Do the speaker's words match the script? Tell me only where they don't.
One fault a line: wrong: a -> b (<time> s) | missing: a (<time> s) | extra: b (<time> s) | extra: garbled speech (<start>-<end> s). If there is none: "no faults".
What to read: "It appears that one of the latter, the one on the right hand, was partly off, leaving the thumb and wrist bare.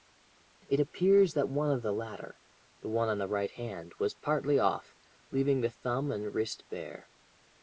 no faults